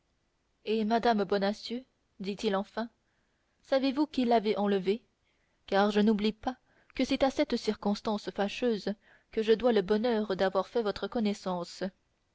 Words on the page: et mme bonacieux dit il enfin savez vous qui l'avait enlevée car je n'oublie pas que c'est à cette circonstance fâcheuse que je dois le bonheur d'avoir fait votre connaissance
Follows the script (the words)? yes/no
yes